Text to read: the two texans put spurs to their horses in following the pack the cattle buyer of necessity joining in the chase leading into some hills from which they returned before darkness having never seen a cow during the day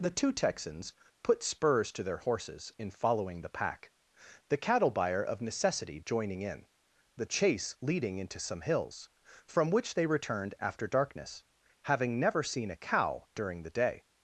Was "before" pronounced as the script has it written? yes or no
no